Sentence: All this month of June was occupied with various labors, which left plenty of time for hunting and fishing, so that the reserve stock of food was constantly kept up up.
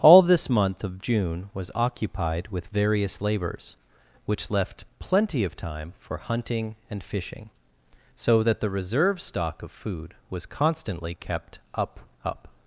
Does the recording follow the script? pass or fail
pass